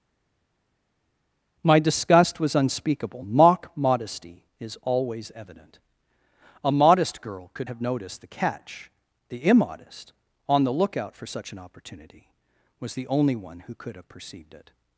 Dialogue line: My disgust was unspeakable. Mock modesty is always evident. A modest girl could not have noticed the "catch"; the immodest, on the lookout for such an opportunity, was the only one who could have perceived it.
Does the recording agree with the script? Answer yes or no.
no